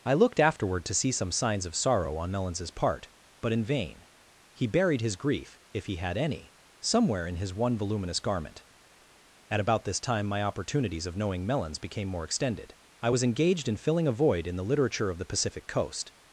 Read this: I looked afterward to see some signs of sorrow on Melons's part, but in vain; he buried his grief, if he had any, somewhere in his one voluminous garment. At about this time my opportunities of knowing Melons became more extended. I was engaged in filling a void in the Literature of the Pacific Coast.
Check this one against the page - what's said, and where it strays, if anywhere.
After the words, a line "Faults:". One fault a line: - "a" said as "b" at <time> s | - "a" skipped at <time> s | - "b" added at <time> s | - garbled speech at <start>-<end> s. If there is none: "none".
I looked afterward to see some signs of sorrow on Melons's part, but in vain; he buried his grief, if he had any, somewhere in his one voluminous garment. At about this time my opportunities of knowing Melons became more extended. I was engaged in filling a void in the Literature of the Pacific Coast.
Faults:
none